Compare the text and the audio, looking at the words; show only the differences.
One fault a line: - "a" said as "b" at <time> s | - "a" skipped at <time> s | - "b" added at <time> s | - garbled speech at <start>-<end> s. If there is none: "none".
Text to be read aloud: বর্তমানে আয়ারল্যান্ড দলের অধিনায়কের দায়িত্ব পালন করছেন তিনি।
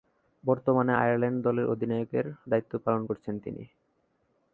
none